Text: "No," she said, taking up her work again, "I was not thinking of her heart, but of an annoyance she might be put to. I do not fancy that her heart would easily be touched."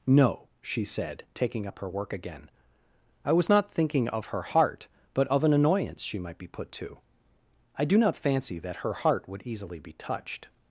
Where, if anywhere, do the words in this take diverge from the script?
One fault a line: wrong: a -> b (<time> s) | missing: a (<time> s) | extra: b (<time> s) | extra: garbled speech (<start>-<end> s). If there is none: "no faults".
no faults